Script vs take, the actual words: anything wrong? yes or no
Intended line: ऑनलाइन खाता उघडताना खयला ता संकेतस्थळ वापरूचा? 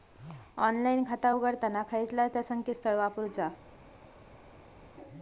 no